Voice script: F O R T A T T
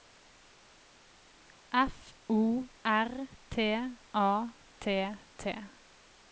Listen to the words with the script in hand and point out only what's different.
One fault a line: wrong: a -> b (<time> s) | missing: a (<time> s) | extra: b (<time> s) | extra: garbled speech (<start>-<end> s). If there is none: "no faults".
no faults